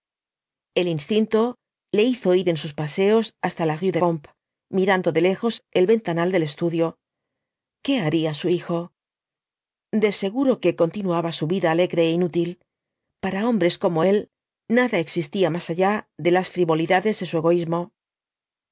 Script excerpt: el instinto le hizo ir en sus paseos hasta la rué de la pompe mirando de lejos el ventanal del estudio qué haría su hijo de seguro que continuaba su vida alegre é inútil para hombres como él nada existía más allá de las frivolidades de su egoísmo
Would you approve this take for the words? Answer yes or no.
no